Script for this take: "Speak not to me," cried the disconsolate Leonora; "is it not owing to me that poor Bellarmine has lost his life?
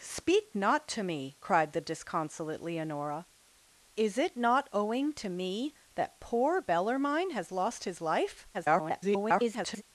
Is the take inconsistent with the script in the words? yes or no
yes